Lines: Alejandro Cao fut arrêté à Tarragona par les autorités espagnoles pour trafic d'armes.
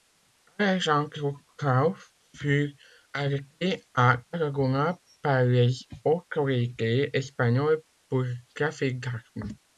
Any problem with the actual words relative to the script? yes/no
no